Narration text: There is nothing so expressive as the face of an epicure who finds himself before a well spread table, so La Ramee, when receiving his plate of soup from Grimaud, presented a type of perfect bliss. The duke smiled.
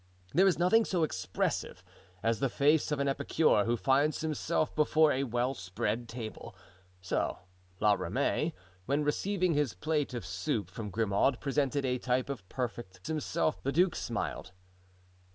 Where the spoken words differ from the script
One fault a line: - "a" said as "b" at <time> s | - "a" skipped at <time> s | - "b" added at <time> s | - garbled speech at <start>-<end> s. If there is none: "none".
- "bliss" said as "himself" at 13.1 s